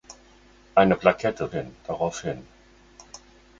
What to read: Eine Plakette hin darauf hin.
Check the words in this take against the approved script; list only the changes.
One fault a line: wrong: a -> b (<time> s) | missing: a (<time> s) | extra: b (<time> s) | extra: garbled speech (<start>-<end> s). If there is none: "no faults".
no faults